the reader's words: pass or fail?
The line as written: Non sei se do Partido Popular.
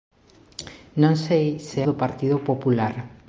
pass